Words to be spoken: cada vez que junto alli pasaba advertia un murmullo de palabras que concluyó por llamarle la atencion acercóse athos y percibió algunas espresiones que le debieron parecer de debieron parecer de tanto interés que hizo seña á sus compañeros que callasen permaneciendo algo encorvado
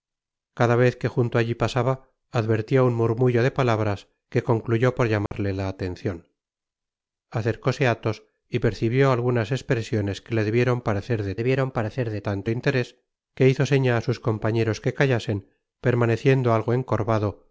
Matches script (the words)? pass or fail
pass